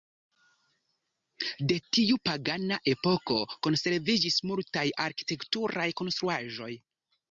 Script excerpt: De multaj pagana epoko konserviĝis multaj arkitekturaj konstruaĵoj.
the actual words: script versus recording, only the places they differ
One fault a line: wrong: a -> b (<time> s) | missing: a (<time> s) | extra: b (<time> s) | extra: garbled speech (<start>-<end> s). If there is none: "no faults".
wrong: multaj -> tiu (2.0 s)